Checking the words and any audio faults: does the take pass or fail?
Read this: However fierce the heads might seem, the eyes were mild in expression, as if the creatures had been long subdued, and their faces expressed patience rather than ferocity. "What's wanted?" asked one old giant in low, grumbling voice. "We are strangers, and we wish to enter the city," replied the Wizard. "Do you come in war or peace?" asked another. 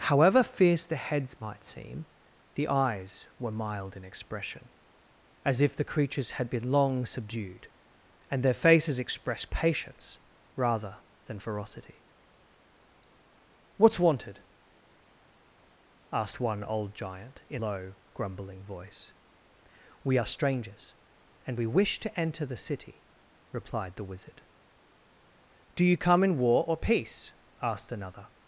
pass